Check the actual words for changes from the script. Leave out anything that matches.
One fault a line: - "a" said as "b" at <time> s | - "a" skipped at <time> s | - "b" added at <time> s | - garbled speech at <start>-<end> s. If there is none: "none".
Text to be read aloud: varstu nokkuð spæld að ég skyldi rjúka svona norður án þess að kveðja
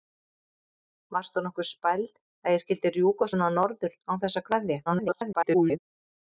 - garbled speech at 4.9-5.8 s